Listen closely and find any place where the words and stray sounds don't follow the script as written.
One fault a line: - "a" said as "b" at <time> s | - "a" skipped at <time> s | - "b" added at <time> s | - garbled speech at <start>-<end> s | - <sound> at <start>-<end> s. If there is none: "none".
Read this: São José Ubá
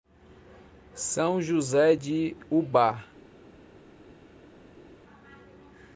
- "de" added at 1.9 s